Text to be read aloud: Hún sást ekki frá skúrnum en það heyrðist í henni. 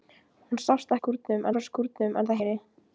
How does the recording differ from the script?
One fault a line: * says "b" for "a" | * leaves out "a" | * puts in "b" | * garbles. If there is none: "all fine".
* says "skúrnum" for "ekki"
* leaves out "heyrðist"